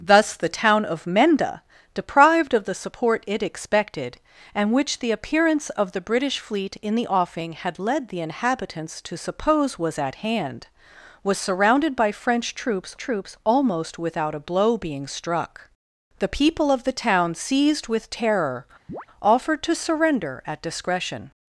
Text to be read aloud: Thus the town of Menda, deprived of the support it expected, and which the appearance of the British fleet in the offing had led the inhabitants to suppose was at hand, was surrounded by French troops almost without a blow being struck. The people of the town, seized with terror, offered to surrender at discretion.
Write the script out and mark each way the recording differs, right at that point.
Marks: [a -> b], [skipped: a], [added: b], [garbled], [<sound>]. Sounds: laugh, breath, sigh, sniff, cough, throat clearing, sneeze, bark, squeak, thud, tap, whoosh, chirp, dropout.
Thus the town of Menda, deprived of the support it expected, and which the appearance of the British fleet in the offing had led the inhabitants to suppose was at hand, was surrounded by French troops [added: troops] almost without a blow being struck. The people of the town, seized with terror, [chirp] offered to surrender at discretion.